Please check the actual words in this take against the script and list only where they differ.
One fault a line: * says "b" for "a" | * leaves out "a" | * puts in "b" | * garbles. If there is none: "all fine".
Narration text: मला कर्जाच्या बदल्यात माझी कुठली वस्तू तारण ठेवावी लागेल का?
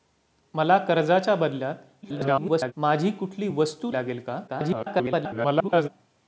* garbles
* leaves out "तारण ठेवावी"
* garbles